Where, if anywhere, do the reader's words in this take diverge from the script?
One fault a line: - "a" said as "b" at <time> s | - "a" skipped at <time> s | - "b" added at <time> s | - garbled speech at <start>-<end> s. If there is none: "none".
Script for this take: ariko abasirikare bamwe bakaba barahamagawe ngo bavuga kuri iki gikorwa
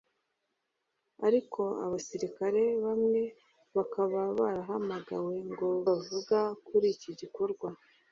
none